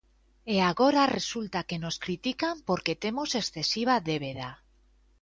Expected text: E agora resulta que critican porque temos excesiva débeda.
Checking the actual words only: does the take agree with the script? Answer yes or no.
no